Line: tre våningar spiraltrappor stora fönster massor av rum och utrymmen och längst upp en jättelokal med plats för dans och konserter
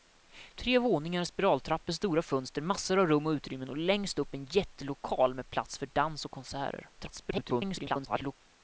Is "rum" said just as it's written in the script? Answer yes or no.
yes